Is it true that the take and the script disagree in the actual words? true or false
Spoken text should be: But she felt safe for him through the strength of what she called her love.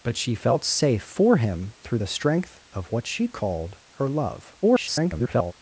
true